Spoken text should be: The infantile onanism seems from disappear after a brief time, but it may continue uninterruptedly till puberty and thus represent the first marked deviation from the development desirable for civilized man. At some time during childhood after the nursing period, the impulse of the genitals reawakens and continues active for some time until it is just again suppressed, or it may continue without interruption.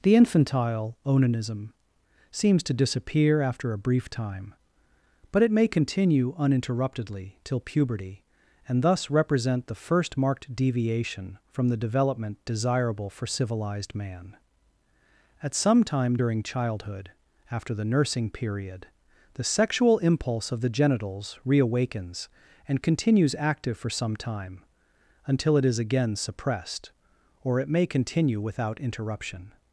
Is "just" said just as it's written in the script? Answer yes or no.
no